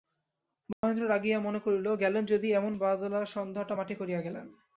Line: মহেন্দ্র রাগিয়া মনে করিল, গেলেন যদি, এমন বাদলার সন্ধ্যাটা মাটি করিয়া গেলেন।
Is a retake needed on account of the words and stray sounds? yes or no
yes